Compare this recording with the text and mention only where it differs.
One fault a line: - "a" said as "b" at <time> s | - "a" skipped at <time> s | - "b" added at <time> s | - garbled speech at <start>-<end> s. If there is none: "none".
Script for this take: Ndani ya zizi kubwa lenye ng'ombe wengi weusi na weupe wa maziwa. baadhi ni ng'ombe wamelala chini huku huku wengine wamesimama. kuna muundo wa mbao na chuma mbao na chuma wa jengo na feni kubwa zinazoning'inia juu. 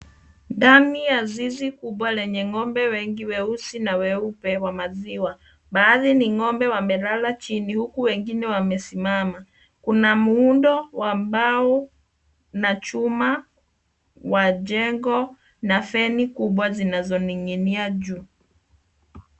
- "huku" skipped at 8.0 s
- "mbao na chuma" skipped at 13.4 s